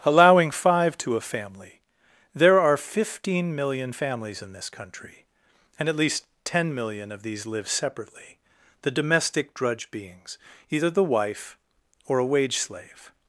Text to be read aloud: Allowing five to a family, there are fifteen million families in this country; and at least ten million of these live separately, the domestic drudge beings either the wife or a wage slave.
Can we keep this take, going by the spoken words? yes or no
yes